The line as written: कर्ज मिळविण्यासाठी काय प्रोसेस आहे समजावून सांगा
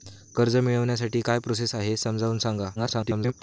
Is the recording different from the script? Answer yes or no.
yes